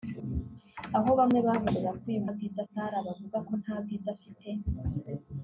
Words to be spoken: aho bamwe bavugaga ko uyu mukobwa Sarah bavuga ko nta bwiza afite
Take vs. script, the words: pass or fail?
fail